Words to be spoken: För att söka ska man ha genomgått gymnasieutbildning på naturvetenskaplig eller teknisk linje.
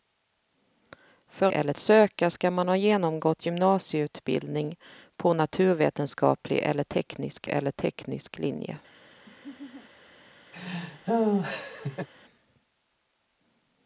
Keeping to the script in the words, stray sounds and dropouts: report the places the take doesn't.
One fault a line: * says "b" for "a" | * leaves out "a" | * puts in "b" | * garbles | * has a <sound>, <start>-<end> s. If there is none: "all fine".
* says "eller" for "att"
* puts in "eller teknisk"
* has a laugh, 9.2-9.9 s
* has a laugh, 10.5-12.1 s